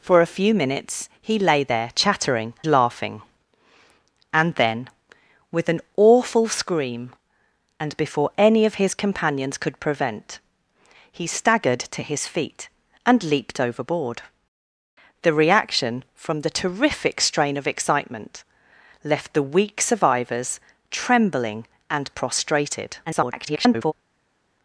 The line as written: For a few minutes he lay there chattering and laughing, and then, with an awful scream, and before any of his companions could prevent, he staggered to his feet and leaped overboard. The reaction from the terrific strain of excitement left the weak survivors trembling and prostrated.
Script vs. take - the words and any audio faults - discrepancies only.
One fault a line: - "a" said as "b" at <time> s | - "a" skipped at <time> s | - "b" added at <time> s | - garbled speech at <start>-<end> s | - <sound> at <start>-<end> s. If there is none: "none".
- "and" skipped at 2.5 s
- garbled speech at 23.1-23.9 s